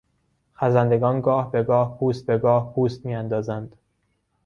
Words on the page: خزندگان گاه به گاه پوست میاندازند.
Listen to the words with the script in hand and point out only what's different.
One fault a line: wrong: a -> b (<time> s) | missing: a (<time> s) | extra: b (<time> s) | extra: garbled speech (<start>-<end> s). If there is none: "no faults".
extra: به گاه پوست (2.3 s)